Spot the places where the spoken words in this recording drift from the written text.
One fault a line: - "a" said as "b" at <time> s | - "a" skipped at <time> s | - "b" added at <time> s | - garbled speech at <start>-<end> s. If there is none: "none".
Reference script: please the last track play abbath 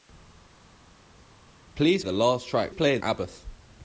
none